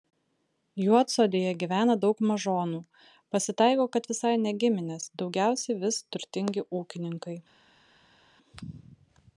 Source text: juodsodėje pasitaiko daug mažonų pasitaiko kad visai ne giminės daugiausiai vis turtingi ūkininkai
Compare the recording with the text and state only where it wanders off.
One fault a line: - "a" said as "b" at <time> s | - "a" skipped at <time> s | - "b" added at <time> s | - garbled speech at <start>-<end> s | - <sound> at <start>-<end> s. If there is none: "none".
- "pasitaiko" said as "gyvena" at 1.6 s